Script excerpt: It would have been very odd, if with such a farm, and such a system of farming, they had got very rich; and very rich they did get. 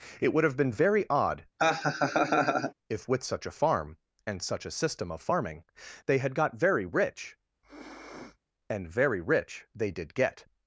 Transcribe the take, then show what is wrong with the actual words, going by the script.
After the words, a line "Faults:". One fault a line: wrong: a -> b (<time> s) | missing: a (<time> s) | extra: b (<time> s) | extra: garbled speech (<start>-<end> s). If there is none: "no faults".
It would have been very odd, if with such a farm, and such a system of farming, they had got very rich; and very rich they did get.
Faults:
no faults